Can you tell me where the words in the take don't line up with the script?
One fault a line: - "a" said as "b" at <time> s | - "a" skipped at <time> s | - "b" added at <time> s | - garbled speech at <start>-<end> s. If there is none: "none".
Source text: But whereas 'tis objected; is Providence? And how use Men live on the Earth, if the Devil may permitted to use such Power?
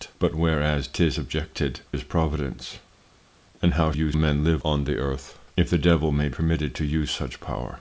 none